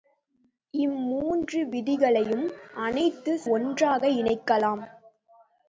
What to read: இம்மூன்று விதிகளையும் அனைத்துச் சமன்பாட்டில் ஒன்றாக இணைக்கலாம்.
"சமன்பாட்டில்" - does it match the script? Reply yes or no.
no